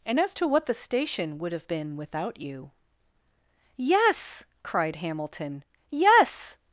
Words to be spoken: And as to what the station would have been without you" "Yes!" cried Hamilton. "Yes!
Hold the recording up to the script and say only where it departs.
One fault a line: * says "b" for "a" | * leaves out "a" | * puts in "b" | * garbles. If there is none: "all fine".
all fine